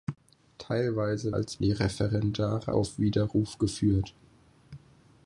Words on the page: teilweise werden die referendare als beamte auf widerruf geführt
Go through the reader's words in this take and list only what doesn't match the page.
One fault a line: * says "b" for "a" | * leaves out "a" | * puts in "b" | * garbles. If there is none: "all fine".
* says "als" for "werden"
* leaves out "als beamte"